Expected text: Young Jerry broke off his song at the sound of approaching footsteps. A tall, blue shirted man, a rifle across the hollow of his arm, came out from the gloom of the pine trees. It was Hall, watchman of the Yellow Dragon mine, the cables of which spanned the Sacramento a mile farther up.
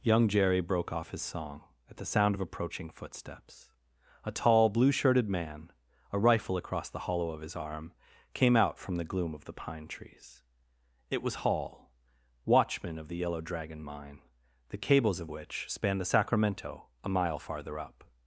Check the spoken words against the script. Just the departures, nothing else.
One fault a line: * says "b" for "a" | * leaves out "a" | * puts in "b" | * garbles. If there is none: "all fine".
all fine